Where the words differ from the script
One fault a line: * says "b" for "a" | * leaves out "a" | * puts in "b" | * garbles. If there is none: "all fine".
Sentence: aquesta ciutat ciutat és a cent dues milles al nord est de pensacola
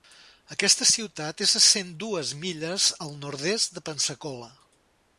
* leaves out "ciutat"